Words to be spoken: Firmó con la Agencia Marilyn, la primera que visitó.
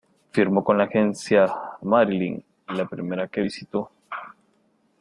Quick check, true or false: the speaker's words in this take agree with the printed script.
true